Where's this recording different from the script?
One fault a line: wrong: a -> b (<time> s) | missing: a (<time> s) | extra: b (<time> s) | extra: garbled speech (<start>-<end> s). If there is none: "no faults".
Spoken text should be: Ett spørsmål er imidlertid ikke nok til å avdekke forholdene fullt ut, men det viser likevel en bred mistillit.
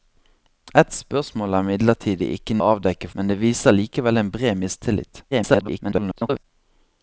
missing: nok til (2.6 s)
missing: forholdene fullt ut (3.1 s)
extra: garbled speech (5.3-6.4 s)